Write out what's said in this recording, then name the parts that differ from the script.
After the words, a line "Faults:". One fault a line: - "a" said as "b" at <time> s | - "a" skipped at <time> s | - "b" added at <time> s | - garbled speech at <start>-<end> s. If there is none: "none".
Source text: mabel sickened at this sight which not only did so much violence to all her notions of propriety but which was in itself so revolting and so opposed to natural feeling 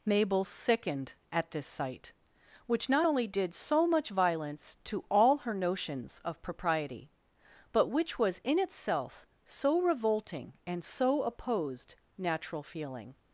mabel sickened at this sight which not only did so much violence to all her notions of propriety but which was in itself so revolting and so opposed natural feeling
Faults:
- "to" skipped at 12.0 s